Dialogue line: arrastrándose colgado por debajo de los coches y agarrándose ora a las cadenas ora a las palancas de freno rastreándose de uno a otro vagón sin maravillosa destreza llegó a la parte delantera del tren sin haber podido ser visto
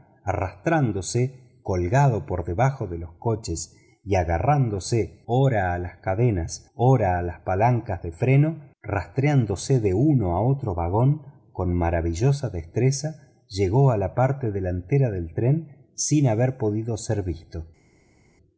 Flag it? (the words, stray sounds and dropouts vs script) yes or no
yes